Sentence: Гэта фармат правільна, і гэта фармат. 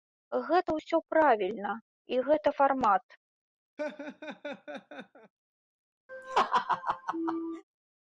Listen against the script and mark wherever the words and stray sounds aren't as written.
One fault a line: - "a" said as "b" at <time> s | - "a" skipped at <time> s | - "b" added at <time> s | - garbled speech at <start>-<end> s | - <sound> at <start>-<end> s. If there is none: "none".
- "фармат" said as "ўсё" at 0.8 s
- laugh at 3.8-5.3 s
- laugh at 6.1-7.6 s